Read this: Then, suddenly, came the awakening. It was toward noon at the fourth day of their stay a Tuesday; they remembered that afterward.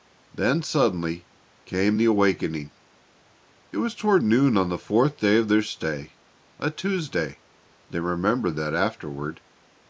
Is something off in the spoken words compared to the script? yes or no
yes